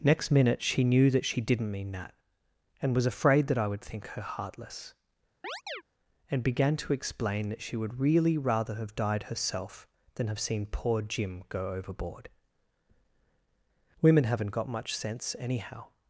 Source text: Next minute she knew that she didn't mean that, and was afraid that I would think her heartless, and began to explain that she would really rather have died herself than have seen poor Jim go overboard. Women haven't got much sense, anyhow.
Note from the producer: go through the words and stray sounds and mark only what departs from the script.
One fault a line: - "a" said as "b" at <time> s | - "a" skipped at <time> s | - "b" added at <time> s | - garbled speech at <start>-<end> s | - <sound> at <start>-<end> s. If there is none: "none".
- chirp at 5.4-5.8 s